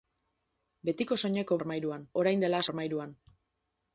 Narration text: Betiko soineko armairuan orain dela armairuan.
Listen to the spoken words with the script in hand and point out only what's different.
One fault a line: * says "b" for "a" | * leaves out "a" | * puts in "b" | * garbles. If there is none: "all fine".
all fine